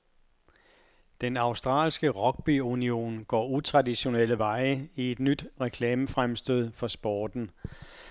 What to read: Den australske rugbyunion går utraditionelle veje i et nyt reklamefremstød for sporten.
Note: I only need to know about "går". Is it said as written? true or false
true